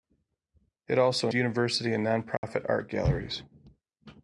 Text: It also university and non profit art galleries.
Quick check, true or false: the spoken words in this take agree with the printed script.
true